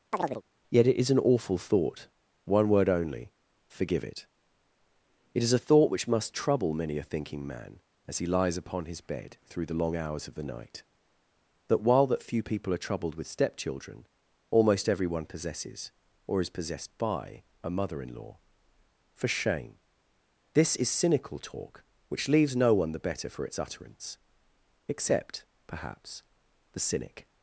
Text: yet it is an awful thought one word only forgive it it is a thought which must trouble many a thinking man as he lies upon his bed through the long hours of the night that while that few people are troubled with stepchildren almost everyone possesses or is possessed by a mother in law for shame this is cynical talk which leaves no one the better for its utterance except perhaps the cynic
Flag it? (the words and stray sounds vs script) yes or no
yes